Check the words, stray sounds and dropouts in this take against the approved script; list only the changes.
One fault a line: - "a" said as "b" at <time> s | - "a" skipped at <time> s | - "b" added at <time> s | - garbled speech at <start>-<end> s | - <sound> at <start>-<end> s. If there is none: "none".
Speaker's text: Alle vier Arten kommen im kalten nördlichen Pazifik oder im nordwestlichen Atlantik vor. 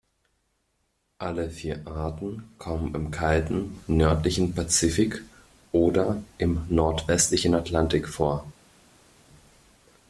none